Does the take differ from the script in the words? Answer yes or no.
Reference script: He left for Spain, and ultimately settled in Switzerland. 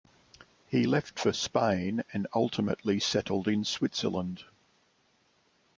no